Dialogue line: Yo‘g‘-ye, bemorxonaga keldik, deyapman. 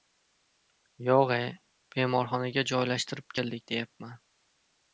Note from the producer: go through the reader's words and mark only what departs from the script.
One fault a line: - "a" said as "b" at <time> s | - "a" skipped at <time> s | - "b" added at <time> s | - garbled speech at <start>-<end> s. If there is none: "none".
- "joylashtirib" added at 2.7 s